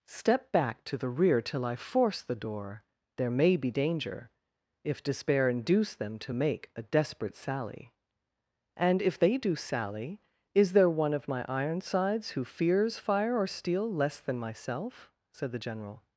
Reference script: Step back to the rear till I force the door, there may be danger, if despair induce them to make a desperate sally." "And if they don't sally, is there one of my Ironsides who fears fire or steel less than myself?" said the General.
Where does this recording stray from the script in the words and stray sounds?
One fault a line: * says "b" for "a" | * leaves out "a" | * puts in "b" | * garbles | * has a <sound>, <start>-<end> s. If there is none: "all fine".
* says "do" for "don't"